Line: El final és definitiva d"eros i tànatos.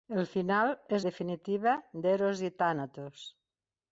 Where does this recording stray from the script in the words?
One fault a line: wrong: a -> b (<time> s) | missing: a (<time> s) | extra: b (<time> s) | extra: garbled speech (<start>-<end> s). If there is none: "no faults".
no faults